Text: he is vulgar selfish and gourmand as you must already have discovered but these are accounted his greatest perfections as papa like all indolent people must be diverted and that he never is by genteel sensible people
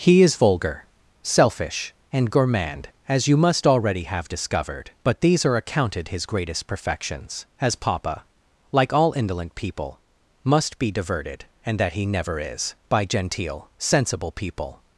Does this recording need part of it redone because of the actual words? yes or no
no